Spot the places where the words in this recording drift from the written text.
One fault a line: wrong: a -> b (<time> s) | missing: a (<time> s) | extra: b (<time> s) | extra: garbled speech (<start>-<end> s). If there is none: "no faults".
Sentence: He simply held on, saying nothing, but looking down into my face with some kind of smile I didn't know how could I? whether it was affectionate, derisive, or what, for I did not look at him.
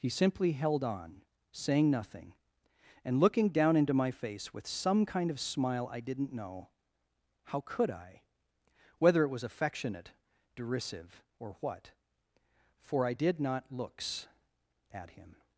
wrong: but -> and (3.0 s)
wrong: look -> looks (13.7 s)